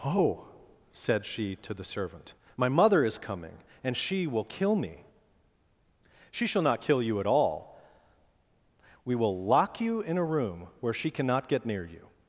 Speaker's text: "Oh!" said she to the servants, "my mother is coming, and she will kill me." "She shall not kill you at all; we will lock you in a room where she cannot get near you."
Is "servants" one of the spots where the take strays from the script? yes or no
yes